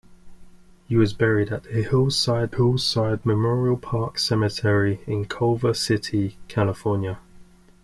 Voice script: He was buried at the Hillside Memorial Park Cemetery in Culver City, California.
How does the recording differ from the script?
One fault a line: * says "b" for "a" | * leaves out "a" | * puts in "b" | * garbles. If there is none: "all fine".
* puts in "Hillside"